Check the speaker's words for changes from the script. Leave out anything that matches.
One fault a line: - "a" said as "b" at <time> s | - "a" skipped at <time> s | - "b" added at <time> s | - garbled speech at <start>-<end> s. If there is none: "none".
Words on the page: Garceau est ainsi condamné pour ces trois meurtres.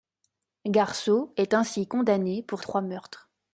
- "ces" skipped at 2.6 s